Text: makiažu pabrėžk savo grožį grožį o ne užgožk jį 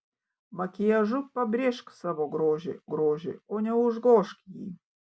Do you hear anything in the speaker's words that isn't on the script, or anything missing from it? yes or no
no